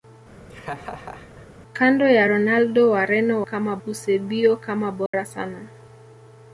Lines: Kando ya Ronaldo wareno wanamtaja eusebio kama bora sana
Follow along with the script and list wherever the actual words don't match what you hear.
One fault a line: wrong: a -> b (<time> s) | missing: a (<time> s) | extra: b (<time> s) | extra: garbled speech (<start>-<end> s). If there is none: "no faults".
wrong: wanamtaja -> kama (3.4 s)